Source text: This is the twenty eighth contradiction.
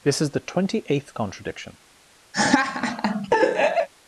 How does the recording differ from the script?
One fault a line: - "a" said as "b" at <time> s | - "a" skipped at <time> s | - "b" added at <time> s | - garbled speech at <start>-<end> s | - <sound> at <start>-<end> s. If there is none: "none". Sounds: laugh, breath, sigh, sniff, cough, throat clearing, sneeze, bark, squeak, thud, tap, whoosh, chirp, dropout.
- laugh at 2.3-3.9 s